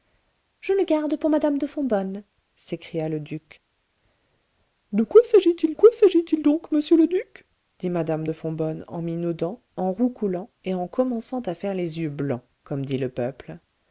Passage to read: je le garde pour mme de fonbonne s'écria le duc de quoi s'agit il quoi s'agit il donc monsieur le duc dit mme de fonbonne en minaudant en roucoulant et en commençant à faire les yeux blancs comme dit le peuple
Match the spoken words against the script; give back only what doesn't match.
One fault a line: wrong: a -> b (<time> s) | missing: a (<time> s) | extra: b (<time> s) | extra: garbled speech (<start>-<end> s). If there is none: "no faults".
no faults